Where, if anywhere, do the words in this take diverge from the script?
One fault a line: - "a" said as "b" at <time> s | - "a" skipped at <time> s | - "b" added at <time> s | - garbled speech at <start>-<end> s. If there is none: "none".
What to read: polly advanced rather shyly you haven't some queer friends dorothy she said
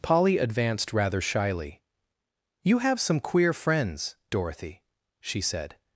- "haven't" said as "have" at 2.8 s